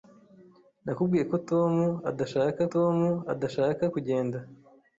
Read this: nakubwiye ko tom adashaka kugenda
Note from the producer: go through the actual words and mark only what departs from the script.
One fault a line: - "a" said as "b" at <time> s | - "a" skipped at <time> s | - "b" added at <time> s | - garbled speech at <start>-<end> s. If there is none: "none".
- "tom adashaka" added at 2.7 s